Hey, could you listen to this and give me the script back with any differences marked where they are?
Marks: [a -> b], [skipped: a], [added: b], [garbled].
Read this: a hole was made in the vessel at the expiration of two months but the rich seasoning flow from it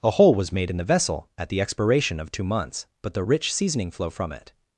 a hole was made in the vessel at the expiration of two months but the rich seasoning flow from it